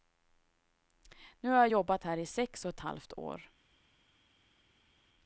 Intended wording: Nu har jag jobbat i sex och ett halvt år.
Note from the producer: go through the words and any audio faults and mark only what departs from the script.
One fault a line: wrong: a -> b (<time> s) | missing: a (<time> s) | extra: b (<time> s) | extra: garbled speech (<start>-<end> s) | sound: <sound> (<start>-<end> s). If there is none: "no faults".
extra: här (2.0 s)